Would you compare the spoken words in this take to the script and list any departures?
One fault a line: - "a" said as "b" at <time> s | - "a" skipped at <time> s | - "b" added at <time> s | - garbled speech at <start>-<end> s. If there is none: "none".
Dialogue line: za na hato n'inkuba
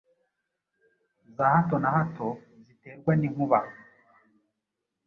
- "hato" added at 1.5 s
- "ziterwa" added at 2.6 s